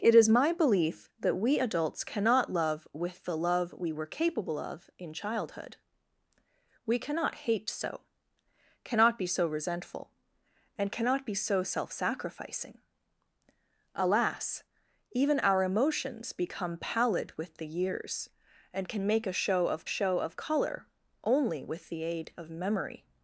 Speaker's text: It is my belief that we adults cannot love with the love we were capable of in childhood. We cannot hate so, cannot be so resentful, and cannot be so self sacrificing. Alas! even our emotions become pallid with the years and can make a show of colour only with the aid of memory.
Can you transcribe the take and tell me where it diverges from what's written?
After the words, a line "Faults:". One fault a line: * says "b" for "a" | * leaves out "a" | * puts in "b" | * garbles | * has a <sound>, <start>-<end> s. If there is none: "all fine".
It is my belief that we adults cannot love with the love we were capable of in childhood. We cannot hate so, cannot be so resentful, and cannot be so self sacrificing. Alas! even our emotions become pallid with the years and can make a show of show of colour only with the aid of memory.
Faults:
* puts in "show of"